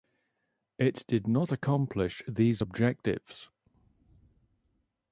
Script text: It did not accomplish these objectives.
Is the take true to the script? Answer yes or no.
yes